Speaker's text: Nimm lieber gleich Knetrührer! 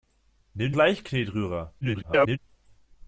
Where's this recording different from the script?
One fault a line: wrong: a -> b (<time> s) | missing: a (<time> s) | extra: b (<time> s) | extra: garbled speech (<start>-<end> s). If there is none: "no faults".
missing: lieber (0.7 s)
extra: garbled speech (1.8-2.4 s)